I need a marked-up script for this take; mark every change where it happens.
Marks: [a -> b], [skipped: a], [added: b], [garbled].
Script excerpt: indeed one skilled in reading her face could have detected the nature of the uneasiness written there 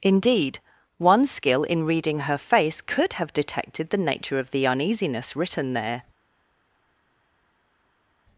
indeed one [skilled -> skill] in reading her face could have detected the nature of the uneasiness written there